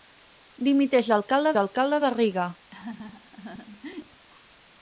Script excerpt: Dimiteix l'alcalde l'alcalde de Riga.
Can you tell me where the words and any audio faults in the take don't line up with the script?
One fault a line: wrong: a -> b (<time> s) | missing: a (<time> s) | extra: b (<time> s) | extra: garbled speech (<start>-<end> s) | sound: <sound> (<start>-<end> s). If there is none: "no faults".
sound: laugh (2.7-4.3 s)